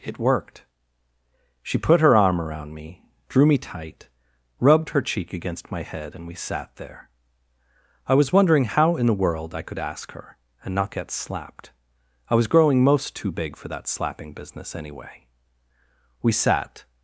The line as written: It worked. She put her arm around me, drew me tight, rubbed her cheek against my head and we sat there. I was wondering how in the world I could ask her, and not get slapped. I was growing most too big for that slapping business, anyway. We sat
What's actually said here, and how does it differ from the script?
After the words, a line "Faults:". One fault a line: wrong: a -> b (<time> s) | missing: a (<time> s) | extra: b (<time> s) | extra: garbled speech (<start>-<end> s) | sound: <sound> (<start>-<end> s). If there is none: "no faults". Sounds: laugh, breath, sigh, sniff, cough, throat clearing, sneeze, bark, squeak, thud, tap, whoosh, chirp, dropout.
It worked. She put her arm around me, drew me tight, rubbed her cheek against my head and we sat there. I was wondering how in the world I could ask her, and not get slapped. I was growing most too big for that slapping business, anyway. We sat
Faults:
no faults